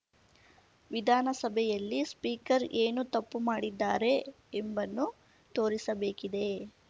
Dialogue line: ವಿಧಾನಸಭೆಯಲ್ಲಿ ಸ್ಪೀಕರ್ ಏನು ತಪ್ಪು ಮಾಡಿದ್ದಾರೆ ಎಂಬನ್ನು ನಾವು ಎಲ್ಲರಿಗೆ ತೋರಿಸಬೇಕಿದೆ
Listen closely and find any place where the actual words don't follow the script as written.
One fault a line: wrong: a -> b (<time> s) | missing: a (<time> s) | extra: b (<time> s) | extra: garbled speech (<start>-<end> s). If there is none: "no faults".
missing: ನಾವು ಎಲ್ಲರಿಗೆ (5.1 s)